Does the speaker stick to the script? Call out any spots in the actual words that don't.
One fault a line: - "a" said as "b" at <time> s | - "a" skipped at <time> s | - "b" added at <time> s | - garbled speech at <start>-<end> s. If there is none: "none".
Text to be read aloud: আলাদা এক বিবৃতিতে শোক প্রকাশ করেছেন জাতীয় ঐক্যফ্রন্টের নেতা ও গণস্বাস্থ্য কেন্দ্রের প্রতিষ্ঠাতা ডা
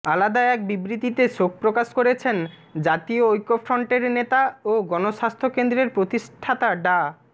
none